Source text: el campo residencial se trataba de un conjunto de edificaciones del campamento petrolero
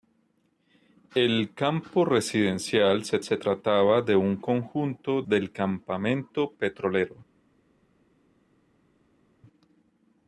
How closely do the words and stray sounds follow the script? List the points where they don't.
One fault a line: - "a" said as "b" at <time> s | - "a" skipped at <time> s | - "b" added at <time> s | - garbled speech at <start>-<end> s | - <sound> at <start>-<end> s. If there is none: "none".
- "se" added at 3.2 s
- "de edificaciones" skipped at 5.2 s